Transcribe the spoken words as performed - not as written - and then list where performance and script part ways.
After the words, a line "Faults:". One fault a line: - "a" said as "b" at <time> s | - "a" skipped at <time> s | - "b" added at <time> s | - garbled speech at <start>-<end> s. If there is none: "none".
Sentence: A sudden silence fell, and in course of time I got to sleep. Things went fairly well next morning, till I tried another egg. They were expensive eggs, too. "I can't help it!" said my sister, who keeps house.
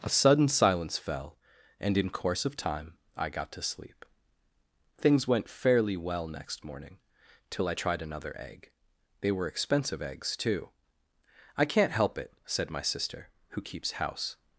A sudden silence fell, and in course of time I got to sleep. Things went fairly well next morning, till I tried another egg. They were expensive eggs, too. "I can't help it!" said my sister, who keeps house.
Faults:
none